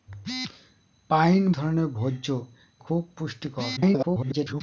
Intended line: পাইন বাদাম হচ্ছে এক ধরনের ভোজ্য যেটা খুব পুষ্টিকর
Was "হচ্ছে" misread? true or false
true